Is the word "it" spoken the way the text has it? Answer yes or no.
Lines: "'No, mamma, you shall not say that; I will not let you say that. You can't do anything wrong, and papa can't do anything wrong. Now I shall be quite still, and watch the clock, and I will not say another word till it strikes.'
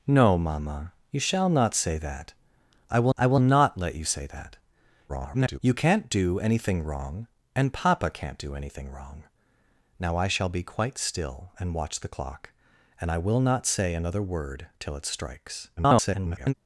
yes